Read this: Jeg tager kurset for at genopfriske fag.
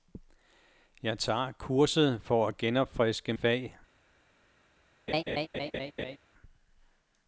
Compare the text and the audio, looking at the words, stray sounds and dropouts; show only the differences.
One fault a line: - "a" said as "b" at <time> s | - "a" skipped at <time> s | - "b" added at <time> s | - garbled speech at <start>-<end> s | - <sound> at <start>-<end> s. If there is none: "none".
- laugh at 5.1-6.2 s